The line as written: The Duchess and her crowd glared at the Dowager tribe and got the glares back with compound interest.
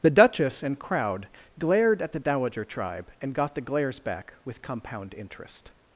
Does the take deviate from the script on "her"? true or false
true